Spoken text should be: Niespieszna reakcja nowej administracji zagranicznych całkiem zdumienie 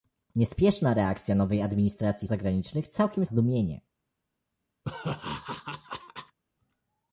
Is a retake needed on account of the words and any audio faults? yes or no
yes